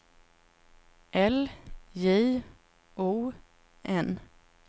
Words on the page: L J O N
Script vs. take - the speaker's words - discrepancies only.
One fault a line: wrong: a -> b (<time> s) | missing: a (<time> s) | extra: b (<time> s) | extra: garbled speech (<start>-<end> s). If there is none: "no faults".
no faults